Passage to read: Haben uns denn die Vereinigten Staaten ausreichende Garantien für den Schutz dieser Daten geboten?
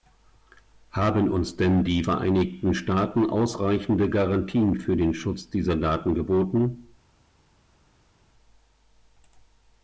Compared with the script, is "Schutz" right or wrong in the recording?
right